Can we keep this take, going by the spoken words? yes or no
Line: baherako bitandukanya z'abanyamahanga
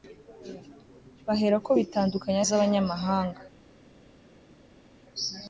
yes